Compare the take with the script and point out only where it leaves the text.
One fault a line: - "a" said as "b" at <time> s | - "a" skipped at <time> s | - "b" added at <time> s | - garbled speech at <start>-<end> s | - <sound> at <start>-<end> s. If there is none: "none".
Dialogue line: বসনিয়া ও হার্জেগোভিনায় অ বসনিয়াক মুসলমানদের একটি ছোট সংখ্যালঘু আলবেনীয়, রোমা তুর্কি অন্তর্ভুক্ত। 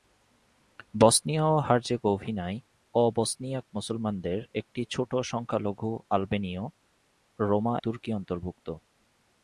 none